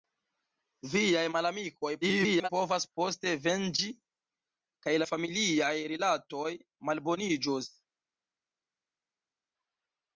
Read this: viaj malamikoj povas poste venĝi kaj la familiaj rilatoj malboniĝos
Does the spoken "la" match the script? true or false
true